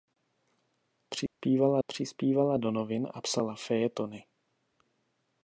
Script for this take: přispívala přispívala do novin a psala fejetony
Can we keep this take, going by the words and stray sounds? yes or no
no